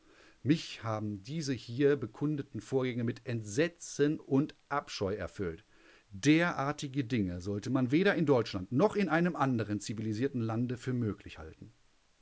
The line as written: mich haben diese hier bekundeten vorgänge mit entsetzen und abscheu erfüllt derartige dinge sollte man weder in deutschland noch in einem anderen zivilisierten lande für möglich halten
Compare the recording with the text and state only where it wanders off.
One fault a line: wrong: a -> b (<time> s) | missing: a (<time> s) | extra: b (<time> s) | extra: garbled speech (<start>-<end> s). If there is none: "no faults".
no faults